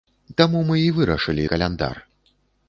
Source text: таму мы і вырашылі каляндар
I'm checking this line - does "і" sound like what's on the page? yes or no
yes